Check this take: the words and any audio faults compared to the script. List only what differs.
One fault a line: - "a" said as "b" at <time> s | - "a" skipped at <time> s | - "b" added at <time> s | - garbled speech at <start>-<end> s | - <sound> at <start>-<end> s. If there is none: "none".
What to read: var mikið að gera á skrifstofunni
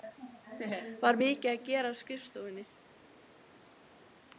none